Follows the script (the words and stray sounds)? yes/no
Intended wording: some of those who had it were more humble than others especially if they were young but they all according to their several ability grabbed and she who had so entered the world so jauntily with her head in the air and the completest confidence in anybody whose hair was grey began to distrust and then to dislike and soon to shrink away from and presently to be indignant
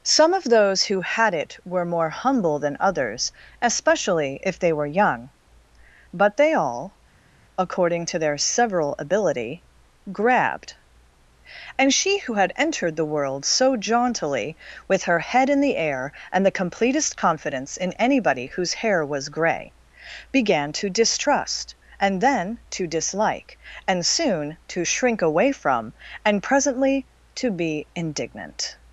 no